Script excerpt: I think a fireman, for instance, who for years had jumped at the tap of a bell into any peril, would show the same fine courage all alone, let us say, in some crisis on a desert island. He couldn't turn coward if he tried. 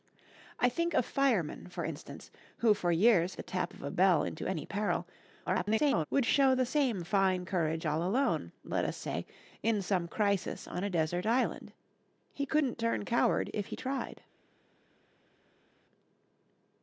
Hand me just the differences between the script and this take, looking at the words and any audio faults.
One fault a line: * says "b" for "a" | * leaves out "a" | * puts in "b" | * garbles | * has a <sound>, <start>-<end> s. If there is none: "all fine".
* leaves out "had jumped at"
* garbles